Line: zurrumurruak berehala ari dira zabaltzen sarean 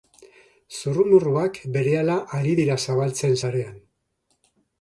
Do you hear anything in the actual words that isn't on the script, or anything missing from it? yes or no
no